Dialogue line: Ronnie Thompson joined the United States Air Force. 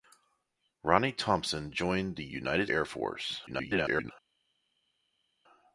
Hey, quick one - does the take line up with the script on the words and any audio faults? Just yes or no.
no